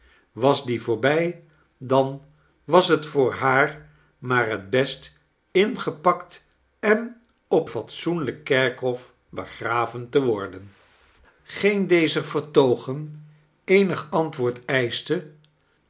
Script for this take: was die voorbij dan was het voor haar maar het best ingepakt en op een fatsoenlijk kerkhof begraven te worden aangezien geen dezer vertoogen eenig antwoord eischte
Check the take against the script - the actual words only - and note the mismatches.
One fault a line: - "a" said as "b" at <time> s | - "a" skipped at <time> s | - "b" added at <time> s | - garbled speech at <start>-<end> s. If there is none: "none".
- "een" skipped at 7.7 s
- "aangezien" skipped at 10.7 s